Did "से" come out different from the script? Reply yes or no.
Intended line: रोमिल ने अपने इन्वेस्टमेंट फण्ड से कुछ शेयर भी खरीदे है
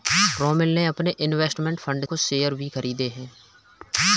yes